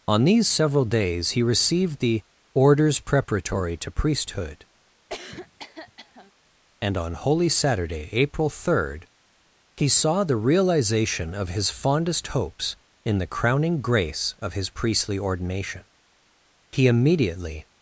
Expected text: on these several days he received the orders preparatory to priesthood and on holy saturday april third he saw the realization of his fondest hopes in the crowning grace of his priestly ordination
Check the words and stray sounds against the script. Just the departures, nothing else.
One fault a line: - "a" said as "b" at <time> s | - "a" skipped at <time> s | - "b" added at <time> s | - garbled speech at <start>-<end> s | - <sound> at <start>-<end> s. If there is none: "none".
- cough at 5.1-6.3 s
- "he immediately" added at 16.7 s